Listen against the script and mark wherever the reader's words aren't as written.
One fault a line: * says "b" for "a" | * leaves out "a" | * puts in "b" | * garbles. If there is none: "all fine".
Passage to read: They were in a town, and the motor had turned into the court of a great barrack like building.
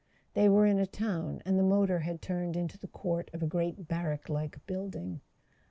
all fine